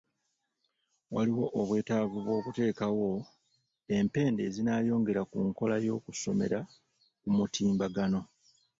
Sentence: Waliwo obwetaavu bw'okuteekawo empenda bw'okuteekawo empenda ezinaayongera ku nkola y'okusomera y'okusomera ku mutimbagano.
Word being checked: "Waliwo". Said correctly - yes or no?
yes